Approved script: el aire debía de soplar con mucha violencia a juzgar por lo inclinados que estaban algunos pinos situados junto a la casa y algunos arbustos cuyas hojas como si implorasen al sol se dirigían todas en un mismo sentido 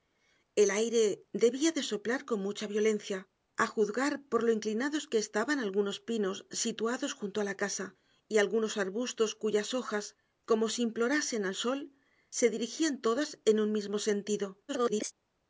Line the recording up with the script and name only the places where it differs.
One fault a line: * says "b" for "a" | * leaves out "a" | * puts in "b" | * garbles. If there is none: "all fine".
* garbles